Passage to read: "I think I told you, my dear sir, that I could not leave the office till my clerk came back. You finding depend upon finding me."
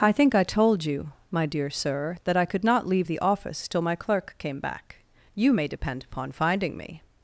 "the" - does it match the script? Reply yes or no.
yes